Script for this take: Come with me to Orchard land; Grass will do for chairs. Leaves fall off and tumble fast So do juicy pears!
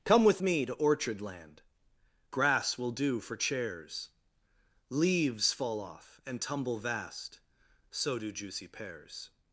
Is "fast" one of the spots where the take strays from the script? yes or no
yes